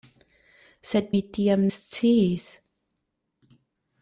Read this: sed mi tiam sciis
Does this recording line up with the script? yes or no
yes